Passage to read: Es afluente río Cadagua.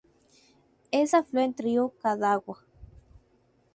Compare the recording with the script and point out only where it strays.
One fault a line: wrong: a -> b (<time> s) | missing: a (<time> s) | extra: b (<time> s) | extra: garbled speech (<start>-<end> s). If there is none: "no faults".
no faults